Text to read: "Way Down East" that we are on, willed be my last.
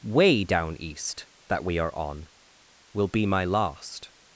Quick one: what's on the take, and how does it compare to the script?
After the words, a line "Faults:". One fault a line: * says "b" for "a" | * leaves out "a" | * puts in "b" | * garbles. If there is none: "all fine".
"Way Down East" that we are on, will be my last.
Faults:
* says "will" for "willed"